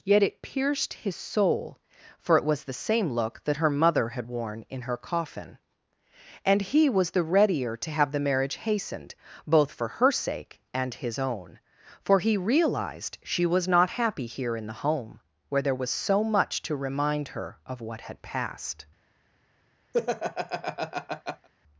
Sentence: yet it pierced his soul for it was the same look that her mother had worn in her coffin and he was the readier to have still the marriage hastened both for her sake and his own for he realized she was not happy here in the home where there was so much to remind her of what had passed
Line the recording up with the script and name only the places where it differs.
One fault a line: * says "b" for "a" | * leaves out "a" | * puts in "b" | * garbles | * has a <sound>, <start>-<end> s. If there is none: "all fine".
* leaves out "still"
* has a laugh, 19.9-21.5 s